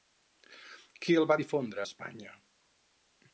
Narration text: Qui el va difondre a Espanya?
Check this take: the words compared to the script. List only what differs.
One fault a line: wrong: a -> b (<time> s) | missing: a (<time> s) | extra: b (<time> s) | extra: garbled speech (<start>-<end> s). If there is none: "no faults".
missing: a (1.8 s)